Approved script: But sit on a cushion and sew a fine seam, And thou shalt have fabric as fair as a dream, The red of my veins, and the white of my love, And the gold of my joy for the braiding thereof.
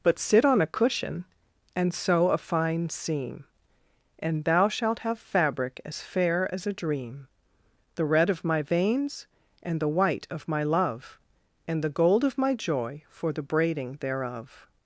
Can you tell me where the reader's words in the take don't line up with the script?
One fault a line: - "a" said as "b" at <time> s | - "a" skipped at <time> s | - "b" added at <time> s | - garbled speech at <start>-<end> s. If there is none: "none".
none